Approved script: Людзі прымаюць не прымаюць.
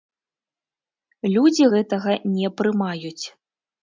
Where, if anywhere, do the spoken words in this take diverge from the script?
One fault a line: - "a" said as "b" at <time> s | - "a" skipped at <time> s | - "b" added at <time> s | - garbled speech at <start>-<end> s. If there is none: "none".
- "прымаюць" said as "гэтага" at 1.7 s